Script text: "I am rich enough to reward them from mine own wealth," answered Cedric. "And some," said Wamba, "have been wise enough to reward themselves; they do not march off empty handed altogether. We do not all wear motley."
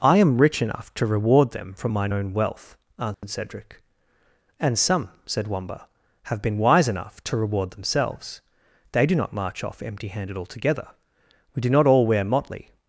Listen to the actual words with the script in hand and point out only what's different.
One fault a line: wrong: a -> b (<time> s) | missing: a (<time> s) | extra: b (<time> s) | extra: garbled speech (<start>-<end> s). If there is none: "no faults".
no faults